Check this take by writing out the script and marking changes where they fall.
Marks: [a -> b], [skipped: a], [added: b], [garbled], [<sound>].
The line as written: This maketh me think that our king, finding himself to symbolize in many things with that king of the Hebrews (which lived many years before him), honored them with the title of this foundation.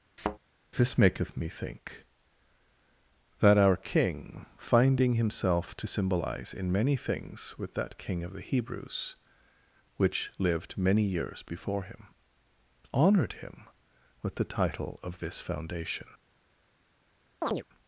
[thud] This maketh me think that our king, finding himself to symbolize in many things with that king of the Hebrews (which lived many years before him), honored [them -> him] with the title of this foundation. [chirp]